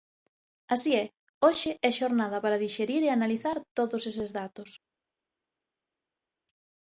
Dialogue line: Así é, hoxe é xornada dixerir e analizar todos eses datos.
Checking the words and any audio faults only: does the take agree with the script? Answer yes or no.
no